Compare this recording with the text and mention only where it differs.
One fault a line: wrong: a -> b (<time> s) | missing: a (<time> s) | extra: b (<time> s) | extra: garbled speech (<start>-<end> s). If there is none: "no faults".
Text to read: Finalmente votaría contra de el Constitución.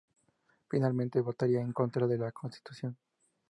extra: en (1.6 s)
wrong: el -> la (2.2 s)